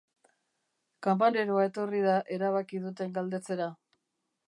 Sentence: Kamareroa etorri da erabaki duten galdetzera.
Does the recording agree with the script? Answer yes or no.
yes